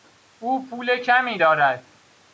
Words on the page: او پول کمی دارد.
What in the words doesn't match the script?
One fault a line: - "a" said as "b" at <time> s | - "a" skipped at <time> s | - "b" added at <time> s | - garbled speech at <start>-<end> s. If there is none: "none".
none